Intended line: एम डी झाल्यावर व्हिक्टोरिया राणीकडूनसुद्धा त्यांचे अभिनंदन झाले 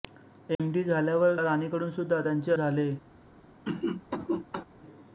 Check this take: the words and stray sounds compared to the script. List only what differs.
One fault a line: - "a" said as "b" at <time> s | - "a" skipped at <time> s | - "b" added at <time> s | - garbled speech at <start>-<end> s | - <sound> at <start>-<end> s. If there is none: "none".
- dropout at 0.5-0.6 s
- "व्हिक्टोरिया" skipped at 1.4 s
- "अभिनंदन" skipped at 2.5 s
- cough at 3.7-4.6 s